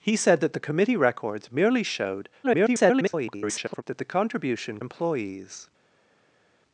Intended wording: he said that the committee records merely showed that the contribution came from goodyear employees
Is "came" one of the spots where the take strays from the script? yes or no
yes